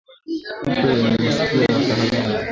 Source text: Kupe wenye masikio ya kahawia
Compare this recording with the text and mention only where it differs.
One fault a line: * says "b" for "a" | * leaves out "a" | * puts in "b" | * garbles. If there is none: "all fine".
all fine